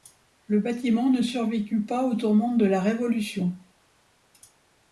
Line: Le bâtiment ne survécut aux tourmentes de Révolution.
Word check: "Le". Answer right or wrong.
right